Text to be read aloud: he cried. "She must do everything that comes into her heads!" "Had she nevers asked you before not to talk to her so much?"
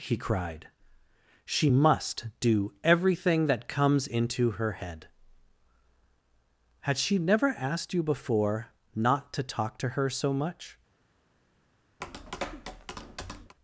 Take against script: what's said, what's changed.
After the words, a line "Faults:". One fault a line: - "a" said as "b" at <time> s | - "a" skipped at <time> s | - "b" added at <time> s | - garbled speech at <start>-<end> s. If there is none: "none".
he cried. "She must do everything that comes into her head!" "Had she never asked you before not to talk to her so much?"
Faults:
- "heads" said as "head" at 4.8 s
- "nevers" said as "never" at 7.2 s